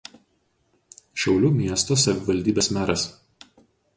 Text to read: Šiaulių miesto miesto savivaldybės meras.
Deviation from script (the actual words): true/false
true